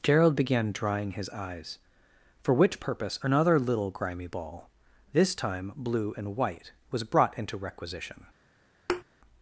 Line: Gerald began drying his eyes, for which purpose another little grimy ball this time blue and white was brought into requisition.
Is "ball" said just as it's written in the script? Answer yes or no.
yes